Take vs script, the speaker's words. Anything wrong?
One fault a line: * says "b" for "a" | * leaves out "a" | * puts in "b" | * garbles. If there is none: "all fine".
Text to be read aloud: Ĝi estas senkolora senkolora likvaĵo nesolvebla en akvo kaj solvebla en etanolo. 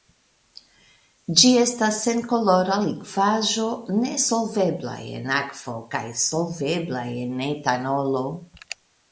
* leaves out "senkolora"